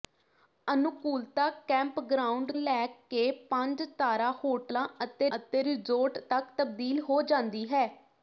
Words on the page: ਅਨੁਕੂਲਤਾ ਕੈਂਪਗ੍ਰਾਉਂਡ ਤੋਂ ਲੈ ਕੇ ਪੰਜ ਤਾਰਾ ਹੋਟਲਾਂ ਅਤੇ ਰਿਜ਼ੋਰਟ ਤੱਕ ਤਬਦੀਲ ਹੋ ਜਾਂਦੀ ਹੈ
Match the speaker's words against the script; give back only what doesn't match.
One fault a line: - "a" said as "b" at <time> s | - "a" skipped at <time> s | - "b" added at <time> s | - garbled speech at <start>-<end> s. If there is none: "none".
- "ਤੋਂ" skipped at 2.5 s
- "ਅਤੇ" added at 5.4 s